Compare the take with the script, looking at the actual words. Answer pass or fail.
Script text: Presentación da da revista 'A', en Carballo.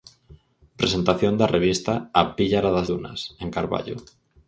fail